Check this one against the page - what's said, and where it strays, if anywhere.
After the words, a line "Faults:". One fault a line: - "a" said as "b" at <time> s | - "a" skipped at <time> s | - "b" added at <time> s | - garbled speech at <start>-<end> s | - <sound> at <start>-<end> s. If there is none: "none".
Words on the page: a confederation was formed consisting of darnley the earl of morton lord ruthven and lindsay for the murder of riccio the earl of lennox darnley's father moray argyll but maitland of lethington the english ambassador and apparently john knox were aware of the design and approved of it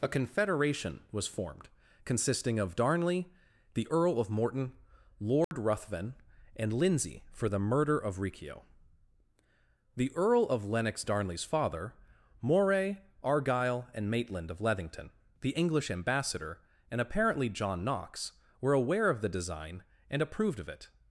a confederation was formed consisting of darnley the earl of morton lord ruthven and lindsay for the murder of riccio the earl of lennox darnley's father moray argyll and maitland of lethington the english ambassador and apparently john knox were aware of the design and approved of it
Faults:
- dropout at 5.4-5.5 s
- "but" said as "and" at 13.9 s